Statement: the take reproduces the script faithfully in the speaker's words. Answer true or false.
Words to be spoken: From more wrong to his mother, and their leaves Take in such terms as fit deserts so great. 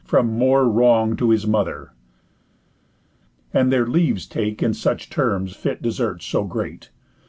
false